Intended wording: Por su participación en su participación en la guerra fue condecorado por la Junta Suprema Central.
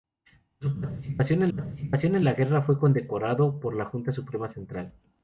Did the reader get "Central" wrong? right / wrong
right